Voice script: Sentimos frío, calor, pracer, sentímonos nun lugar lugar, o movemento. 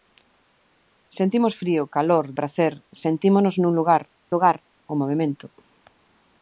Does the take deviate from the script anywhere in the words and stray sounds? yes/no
no